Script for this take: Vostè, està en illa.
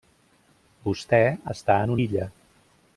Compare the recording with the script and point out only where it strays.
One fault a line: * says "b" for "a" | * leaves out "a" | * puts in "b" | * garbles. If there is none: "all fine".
all fine